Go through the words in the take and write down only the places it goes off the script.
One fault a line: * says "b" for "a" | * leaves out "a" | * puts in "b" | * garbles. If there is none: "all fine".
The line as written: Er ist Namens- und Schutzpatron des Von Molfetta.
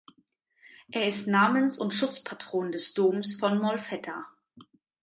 * puts in "Doms"